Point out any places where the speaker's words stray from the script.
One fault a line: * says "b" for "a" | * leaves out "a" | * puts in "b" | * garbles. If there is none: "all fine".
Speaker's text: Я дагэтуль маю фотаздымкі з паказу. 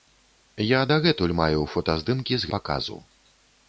all fine